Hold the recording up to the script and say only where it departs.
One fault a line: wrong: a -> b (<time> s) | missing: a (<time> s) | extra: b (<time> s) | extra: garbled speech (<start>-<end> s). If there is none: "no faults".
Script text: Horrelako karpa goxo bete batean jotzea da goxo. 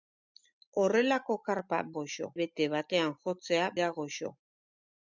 no faults